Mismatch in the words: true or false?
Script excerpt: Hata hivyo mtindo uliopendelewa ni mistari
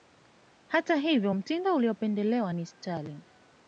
true